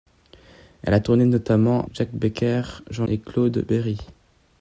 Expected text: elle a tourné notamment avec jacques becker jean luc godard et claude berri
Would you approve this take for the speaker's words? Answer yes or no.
no